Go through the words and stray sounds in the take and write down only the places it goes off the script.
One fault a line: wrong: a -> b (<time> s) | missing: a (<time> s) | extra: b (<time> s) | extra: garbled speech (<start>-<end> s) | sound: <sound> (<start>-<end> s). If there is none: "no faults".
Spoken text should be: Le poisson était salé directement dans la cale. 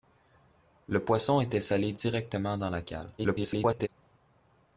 extra: garbled speech (3.2-3.9 s)